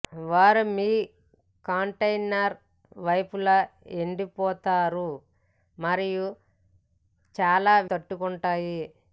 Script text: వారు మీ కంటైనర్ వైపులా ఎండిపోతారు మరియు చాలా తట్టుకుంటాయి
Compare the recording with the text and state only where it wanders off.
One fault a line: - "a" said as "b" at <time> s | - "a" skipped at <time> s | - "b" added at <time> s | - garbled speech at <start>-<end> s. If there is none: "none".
none